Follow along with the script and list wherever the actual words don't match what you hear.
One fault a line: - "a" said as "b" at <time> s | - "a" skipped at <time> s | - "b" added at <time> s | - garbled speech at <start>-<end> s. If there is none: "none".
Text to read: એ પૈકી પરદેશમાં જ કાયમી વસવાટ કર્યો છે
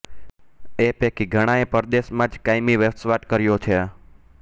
- "ઘણાએ" added at 1.4 s